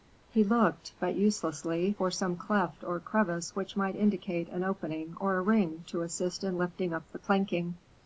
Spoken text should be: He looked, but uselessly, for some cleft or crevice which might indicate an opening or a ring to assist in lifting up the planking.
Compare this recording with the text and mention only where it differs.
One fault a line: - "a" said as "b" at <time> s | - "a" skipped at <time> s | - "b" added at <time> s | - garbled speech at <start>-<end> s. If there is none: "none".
none